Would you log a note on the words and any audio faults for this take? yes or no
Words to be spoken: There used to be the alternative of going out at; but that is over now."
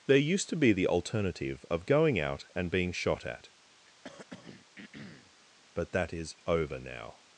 yes